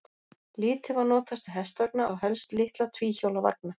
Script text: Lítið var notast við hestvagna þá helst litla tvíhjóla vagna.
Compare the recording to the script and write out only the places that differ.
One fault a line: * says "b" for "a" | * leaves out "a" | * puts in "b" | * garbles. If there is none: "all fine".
all fine